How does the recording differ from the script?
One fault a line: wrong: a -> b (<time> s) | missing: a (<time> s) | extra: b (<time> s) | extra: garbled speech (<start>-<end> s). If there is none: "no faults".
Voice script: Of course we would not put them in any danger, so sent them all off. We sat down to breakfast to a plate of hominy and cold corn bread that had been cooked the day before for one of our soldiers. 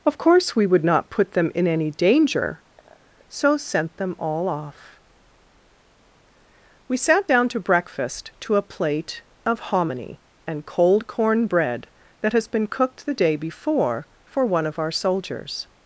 wrong: had -> has (12.3 s)